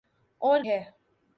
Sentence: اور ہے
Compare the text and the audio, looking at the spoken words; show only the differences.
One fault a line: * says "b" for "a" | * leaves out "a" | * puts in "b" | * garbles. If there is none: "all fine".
all fine